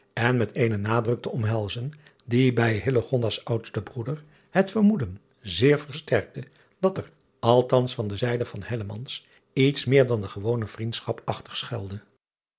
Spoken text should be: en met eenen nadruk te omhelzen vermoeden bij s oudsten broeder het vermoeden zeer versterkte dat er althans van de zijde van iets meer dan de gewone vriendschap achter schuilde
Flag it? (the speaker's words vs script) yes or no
yes